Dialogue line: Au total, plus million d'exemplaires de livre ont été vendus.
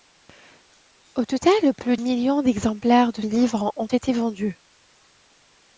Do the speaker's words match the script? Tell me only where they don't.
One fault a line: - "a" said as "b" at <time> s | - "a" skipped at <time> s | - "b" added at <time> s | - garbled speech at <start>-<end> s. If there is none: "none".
none